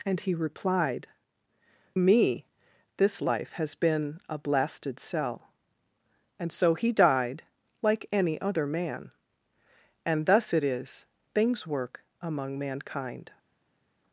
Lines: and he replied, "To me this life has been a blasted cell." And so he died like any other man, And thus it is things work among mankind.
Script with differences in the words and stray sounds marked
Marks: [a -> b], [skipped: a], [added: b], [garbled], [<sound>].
and he replied, [skipped: "To] me this life has been a blasted cell." And so he died like any other man, And thus it is things work among mankind.